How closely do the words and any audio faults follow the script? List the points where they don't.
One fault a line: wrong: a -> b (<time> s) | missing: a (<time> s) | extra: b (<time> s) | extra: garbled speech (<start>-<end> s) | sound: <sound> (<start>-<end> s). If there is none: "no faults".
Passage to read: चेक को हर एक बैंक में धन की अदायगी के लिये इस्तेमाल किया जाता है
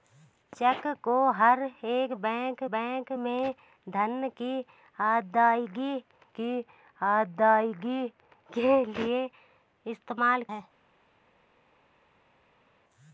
extra: बैंक (2.7 s)
extra: की अदायगी (6.3 s)
missing: किया जाता (10.4 s)